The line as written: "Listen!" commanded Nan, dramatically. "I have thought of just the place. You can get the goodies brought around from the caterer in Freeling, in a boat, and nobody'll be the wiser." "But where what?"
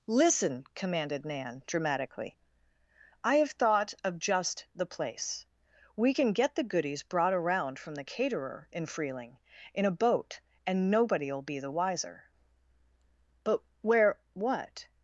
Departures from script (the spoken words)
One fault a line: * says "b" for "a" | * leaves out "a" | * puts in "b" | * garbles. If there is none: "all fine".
* says "We" for "You"